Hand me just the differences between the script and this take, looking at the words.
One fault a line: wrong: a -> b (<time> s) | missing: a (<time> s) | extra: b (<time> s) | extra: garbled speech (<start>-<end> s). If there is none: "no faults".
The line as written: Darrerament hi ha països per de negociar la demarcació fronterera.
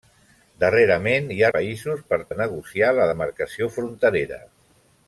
no faults